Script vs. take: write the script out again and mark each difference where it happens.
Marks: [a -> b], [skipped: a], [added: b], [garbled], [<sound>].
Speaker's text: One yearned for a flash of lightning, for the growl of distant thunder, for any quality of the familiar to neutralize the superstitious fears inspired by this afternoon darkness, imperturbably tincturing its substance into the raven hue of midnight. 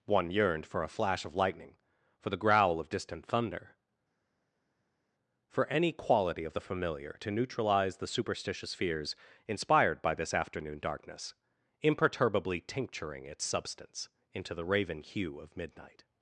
One yearned for a flash of lightning, for the growl of distant thunder, for any quality of the familiar to neutralize the superstitious fears inspired by this afternoon darkness, imperturbably tincturing its substance into the raven hue of midnight.